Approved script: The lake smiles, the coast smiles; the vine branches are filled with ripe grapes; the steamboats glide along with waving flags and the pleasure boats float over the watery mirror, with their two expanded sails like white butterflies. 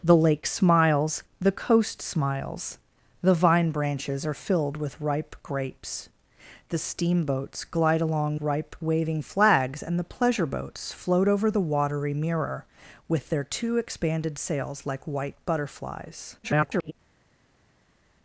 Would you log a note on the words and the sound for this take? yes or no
yes